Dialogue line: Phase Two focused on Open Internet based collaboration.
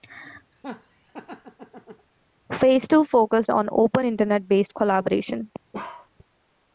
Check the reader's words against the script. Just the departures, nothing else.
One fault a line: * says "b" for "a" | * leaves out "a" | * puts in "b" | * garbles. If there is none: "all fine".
all fine